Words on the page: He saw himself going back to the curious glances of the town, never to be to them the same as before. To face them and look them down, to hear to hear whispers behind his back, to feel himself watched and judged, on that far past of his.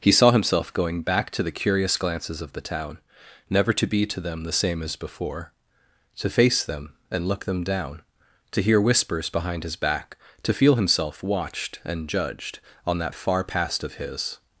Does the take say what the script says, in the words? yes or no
no